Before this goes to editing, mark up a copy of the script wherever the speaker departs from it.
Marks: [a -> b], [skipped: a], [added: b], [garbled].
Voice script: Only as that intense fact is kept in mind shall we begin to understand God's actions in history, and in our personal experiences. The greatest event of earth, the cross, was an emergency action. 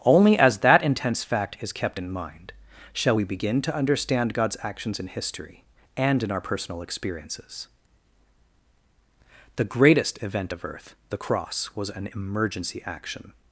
Only as that intense fact is kept in mind shall we begin to understand God's actions in history, and in our personal experiences. The greatest event of earth, the cross, was an emergency action.